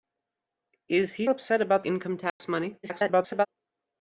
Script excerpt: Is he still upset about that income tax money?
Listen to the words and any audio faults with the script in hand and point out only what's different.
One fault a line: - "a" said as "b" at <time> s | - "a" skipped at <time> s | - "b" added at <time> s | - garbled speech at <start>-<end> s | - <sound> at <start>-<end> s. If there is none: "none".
- "still" skipped at 1.3 s
- "that" skipped at 1.8 s
- dropout at 2.3-2.4 s
- garbled speech at 2.8-3.5 s